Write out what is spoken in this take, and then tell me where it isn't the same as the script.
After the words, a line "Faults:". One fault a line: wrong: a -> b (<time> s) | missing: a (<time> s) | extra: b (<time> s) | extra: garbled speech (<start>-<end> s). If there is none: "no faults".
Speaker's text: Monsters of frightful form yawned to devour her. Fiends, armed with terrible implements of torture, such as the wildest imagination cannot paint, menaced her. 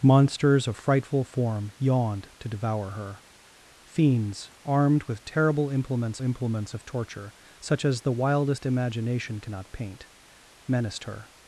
Monsters of frightful form yawned to devour her. Fiends, armed with terrible implements implements of torture, such as the wildest imagination cannot paint, menaced her.
Faults:
extra: implements (6.2 s)